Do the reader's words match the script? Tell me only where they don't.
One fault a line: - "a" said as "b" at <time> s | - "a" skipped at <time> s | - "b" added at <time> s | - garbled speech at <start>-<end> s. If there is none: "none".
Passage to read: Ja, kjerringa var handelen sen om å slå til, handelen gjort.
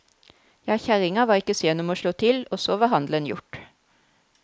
- "handelen" said as "ikke" at 1.4 s
- "og så var" added at 2.5 s